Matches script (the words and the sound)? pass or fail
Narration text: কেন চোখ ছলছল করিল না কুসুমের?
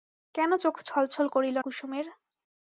fail